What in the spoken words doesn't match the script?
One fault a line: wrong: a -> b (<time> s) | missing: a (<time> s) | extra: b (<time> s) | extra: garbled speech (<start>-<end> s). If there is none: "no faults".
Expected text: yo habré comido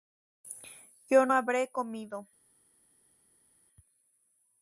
no faults